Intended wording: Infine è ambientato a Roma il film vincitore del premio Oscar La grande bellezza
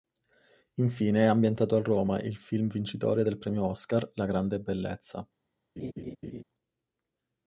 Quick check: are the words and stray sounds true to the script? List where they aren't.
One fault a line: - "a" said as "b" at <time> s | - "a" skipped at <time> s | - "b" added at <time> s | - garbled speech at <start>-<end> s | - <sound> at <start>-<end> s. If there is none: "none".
- laugh at 5.8-6.4 s